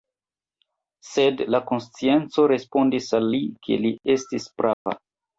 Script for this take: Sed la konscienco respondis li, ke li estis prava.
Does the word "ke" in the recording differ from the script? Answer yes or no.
no